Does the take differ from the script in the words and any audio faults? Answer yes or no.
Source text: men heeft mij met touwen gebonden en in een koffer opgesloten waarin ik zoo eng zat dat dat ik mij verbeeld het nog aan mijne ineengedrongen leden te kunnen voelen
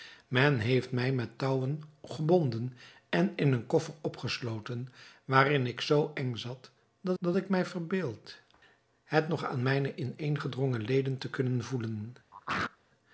yes